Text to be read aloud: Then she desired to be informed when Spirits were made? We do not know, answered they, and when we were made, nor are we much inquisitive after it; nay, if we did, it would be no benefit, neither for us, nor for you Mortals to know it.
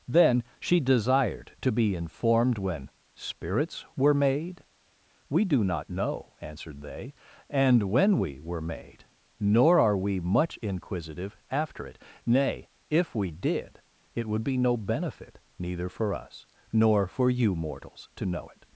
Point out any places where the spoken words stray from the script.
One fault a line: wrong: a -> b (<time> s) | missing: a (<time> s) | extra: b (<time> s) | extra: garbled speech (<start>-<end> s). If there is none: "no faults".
no faults